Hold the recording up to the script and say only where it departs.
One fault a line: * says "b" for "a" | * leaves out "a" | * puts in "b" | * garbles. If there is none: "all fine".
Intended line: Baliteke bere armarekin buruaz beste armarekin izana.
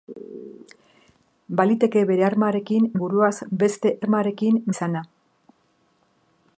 all fine